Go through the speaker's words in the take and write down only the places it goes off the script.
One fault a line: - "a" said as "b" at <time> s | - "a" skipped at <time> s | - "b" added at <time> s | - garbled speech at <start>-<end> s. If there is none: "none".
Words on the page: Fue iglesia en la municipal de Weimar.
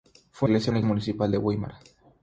none